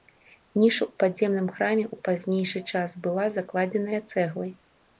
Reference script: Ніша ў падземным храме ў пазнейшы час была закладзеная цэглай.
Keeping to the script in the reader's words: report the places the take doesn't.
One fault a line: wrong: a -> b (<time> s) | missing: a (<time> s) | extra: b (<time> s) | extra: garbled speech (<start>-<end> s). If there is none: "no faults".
no faults